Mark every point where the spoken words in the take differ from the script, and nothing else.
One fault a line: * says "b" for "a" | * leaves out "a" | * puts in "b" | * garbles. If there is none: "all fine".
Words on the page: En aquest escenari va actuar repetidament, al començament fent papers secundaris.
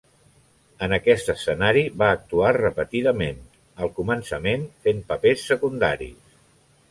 all fine